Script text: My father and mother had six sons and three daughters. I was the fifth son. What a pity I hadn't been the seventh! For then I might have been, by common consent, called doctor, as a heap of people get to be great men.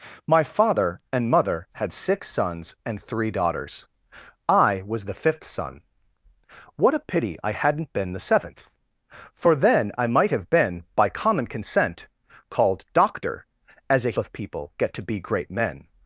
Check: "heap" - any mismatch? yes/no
yes